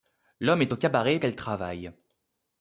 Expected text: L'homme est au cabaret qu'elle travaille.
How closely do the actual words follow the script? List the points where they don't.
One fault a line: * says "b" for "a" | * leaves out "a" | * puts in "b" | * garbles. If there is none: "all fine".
all fine